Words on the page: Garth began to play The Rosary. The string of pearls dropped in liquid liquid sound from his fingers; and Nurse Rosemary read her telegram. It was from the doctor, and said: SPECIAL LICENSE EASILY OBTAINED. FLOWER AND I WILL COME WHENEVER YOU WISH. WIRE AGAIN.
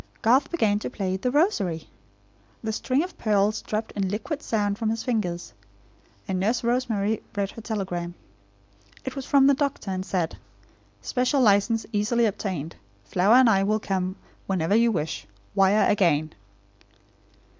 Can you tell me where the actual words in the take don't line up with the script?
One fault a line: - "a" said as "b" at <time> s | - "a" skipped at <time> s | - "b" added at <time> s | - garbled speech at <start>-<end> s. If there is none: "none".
- "liquid" skipped at 4.4 s